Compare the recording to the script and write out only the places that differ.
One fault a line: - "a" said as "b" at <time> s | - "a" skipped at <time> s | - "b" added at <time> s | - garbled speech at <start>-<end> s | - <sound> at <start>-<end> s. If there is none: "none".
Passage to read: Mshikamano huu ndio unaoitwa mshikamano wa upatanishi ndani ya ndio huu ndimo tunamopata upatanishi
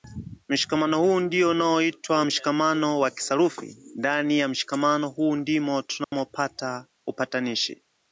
- "upatanishi" said as "kisarufi" at 3.1 s
- "ndio" said as "mshikamano" at 4.5 s
- dropout at 6.0-6.1 s